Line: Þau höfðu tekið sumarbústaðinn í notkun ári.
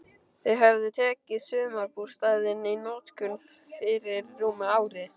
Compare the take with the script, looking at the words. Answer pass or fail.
fail